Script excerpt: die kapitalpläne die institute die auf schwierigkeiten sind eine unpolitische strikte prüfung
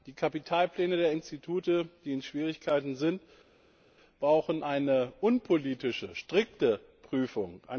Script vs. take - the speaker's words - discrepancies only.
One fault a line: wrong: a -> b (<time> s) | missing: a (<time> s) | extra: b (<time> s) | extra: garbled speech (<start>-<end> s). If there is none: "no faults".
wrong: die -> der (1.0 s)
wrong: auf -> in (2.1 s)
extra: brauchen (4.2 s)